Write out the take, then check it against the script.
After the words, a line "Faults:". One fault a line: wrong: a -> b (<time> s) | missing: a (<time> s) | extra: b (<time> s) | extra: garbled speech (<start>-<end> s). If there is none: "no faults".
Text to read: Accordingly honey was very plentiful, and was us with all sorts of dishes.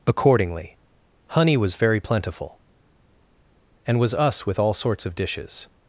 Accordingly honey was very plentiful, and was us with all sorts of dishes.
Faults:
no faults